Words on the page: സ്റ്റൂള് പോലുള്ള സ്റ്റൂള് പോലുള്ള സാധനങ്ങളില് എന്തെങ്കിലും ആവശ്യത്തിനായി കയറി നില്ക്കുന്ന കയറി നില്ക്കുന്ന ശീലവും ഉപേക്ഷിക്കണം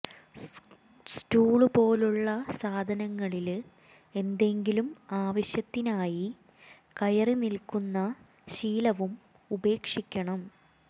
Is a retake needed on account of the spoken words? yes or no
yes